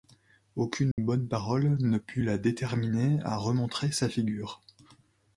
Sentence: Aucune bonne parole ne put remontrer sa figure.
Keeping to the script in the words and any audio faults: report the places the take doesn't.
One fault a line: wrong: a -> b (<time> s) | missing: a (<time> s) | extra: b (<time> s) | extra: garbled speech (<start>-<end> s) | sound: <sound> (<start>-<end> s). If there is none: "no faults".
sound: dropout (0.9-1.0 s)
extra: la déterminer à (2.2 s)